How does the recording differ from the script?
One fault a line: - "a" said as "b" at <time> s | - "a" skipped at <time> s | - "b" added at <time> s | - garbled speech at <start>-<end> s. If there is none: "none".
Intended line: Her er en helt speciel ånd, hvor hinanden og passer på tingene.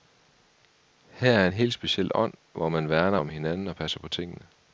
- "man værner om" added at 2.7 s